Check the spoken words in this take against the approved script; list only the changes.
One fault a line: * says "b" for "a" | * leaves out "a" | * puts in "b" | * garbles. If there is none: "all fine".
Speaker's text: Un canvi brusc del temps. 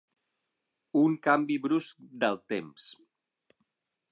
all fine